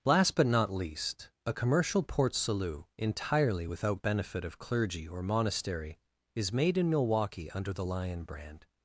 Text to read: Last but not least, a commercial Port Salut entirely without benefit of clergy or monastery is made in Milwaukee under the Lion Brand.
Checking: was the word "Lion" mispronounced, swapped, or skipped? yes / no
no